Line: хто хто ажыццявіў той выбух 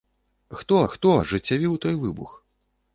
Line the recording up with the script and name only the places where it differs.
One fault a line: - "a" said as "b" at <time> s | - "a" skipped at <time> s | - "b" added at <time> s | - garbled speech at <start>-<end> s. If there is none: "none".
none